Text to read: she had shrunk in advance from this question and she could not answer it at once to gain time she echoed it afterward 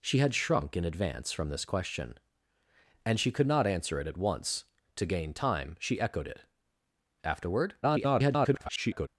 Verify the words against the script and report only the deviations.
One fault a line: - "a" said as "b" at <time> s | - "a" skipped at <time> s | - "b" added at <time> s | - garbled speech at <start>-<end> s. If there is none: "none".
- garbled speech at 7.8-9.1 s